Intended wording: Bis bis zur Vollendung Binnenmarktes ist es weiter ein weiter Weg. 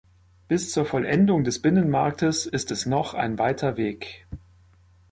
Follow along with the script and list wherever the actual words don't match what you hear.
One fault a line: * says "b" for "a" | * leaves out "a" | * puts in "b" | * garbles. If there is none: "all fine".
* leaves out "bis"
* puts in "des"
* says "noch" for "weiter"